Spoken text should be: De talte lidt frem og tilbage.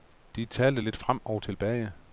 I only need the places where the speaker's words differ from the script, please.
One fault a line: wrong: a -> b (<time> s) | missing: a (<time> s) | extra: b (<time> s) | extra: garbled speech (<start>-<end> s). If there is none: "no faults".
no faults